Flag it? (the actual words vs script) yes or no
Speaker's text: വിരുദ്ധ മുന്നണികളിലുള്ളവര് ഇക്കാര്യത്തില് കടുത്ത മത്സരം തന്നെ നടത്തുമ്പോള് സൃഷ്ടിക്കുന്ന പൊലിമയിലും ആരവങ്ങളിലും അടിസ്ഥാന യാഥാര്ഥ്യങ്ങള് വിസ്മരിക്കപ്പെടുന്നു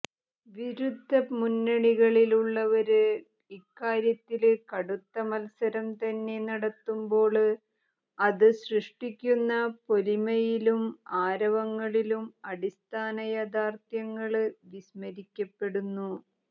yes